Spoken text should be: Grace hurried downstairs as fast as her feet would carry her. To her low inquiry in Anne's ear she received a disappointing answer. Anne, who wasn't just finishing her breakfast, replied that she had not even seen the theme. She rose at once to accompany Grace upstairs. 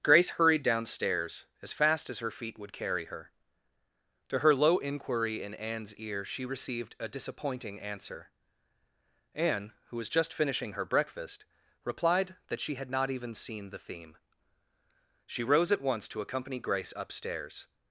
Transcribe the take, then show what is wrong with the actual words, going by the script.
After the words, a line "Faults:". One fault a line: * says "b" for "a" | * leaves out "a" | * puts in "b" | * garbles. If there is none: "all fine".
Grace hurried downstairs as fast as her feet would carry her. To her low inquiry in Anne's ear she received a disappointing answer. Anne, who was just finishing her breakfast, replied that she had not even seen the theme. She rose at once to accompany Grace upstairs.
Faults:
* says "was" for "wasn't"